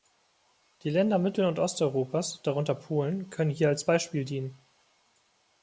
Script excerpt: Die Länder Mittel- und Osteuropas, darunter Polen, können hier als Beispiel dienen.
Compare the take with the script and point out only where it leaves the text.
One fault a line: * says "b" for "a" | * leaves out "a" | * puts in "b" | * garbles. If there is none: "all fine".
all fine